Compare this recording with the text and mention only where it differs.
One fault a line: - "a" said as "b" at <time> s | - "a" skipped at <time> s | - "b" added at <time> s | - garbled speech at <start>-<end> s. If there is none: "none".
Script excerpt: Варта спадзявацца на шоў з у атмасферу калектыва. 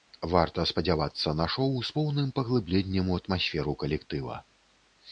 - "поўным паглыбленнем" added at 2.0 s